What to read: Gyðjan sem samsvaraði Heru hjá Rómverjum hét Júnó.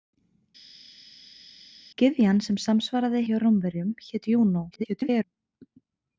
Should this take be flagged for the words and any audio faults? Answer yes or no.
yes